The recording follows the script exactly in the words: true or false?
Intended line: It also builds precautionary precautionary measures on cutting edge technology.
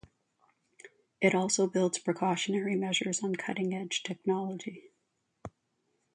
false